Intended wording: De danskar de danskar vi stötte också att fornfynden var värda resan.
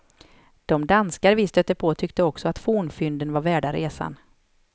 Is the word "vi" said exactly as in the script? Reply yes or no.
no